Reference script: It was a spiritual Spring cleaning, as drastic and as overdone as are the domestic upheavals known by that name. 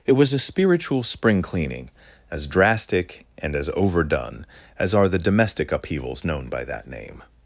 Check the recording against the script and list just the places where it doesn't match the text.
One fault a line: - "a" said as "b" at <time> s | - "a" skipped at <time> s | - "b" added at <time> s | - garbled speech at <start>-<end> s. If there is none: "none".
none